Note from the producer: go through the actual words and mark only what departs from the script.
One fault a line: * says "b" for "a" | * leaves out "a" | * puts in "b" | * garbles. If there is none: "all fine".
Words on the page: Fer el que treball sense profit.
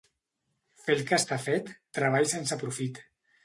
* puts in "està fet"